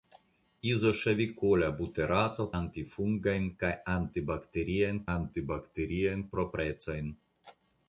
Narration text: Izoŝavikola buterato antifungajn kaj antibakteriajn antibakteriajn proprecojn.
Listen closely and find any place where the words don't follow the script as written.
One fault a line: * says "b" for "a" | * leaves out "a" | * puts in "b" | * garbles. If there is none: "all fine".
all fine